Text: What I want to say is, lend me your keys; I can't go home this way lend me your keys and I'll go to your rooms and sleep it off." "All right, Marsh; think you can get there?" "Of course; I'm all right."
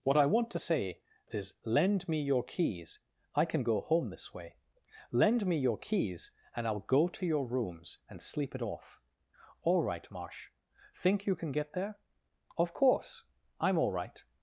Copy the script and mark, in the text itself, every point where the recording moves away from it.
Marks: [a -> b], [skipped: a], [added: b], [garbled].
What I want to say is, lend me your keys; I [can't -> can] go home this way lend me your keys and I'll go to your rooms and sleep it off." "All right, Marsh; think you can get there?" "Of course; I'm all right."